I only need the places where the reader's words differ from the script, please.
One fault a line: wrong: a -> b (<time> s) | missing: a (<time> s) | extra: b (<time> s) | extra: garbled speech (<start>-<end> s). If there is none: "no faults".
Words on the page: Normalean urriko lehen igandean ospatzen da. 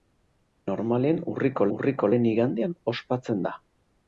extra: urriko (1.8 s)